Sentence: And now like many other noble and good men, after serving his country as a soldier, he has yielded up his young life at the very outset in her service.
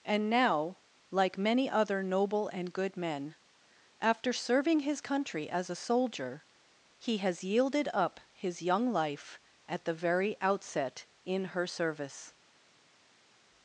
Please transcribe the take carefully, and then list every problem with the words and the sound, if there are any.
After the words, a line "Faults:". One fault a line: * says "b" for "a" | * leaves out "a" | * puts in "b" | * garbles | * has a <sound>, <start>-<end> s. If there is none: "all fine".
And now like many other noble and good men, after serving his country as a soldier, he has yielded up his young life at the very outset in her service.
Faults:
all fine